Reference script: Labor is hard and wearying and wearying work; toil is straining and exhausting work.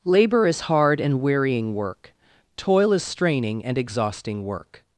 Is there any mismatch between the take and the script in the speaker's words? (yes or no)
yes